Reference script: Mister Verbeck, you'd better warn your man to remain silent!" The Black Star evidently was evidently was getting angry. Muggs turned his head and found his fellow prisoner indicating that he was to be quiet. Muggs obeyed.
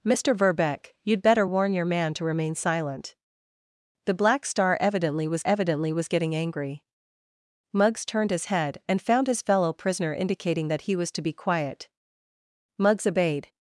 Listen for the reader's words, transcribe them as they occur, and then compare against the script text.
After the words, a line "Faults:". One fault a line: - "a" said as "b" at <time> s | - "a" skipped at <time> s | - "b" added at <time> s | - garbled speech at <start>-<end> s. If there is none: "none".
Mister Verbeck, you'd better warn your man to remain silent!" The Black Star evidently was evidently was getting angry. Muggs turned his head and found his fellow prisoner indicating that he was to be quiet. Muggs obeyed.
Faults:
none